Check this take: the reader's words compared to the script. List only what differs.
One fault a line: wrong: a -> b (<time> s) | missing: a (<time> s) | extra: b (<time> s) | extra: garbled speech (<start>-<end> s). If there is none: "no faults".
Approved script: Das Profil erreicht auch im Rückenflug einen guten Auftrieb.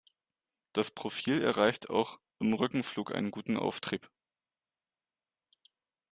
no faults